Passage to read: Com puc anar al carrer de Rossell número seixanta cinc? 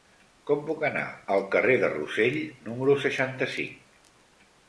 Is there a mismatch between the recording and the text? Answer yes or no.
no